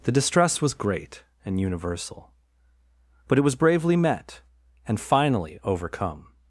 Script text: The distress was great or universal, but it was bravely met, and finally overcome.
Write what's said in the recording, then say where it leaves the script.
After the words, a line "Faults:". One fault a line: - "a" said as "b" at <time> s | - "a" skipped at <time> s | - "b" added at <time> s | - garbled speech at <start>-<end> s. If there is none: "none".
The distress was great and universal, but it was bravely met, and finally overcome.
Faults:
- "or" said as "and" at 1.4 s